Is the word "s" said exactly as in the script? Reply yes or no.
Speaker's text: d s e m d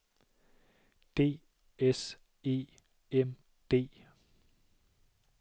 yes